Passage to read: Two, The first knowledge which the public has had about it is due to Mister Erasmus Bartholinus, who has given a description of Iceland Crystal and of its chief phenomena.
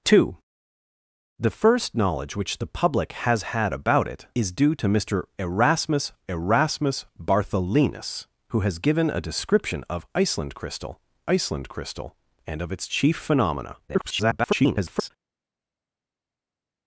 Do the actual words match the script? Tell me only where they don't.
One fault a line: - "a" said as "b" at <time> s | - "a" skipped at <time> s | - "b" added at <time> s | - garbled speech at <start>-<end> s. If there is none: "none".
- "Erasmus" added at 6.3 s
- "Iceland Crystal" added at 11.3 s
- garbled speech at 13.9-15.1 s